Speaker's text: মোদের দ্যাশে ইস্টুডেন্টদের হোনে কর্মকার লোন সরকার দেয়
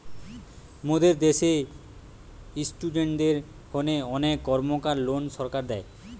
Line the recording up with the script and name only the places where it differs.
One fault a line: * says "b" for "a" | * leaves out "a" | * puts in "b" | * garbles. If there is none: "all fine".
* puts in "অনেক"